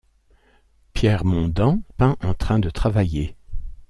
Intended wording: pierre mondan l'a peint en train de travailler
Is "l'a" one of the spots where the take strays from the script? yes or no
yes